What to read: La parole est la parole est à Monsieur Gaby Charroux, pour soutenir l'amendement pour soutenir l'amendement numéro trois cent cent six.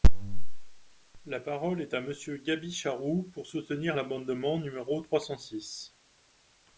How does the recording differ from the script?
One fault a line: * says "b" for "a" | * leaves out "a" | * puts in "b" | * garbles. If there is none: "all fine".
* leaves out "la parole est"
* leaves out "pour soutenir l'amendement"
* leaves out "cent"